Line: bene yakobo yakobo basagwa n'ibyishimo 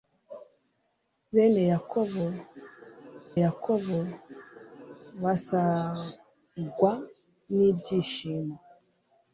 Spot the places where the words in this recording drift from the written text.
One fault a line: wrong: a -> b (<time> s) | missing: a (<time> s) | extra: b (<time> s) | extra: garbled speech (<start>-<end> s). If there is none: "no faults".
no faults